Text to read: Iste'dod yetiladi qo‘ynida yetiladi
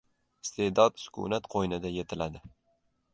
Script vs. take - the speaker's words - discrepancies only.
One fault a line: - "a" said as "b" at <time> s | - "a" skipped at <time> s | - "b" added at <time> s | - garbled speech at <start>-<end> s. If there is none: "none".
- "yetiladi" said as "sukunat" at 1.0 s